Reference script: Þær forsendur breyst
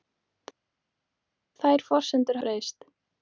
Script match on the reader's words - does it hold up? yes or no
yes